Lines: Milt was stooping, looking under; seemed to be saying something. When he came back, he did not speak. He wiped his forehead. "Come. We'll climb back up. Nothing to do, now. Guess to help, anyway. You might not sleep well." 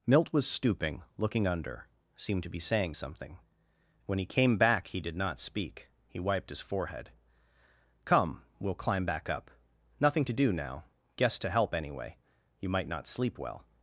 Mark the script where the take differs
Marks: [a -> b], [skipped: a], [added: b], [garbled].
Milt was stooping, looking under; seemed to be saying something. When he came back, he did not speak. He wiped his forehead. "Come. We'll climb back up. Nothing to do, now. Guess to help, anyway. You might not sleep well."